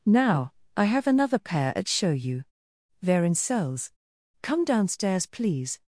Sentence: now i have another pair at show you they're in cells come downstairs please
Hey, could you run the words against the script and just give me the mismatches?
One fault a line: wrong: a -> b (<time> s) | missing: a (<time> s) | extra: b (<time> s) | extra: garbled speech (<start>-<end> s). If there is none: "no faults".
no faults